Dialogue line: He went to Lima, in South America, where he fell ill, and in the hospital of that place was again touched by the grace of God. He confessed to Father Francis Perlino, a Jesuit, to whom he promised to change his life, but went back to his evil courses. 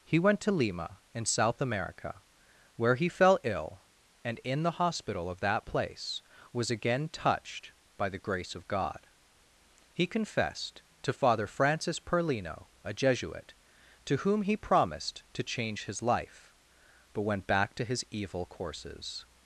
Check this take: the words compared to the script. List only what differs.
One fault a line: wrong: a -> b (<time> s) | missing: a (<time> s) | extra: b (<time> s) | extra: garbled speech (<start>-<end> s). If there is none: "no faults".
no faults